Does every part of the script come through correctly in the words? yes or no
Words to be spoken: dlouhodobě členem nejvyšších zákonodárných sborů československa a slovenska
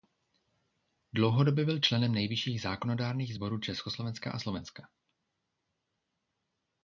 no